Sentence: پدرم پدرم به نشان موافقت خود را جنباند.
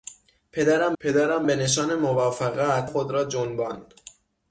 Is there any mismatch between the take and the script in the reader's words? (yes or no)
no